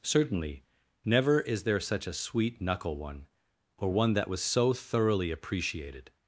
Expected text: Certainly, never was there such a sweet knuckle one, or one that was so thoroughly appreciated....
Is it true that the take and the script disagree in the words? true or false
true